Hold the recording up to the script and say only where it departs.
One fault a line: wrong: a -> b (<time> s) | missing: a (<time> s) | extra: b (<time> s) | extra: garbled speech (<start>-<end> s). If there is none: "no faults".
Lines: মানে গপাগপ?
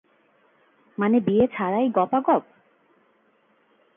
extra: বিয়ে ছাড়াই (1.2 s)